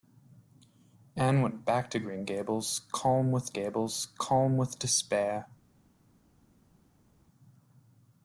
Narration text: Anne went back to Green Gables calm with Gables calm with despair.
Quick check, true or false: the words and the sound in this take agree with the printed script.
true